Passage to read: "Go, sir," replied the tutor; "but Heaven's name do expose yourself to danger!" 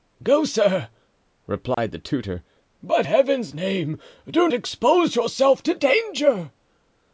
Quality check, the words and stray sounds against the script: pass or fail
fail